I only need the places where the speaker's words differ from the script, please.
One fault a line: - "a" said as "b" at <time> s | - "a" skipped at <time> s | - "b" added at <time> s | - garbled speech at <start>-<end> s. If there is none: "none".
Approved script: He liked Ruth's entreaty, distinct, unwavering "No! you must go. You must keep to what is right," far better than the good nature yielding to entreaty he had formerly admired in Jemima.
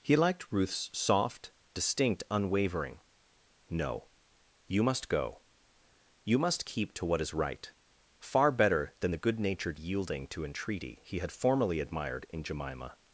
- "entreaty" said as "soft" at 0.9 s
- "nature" said as "natured" at 9.4 s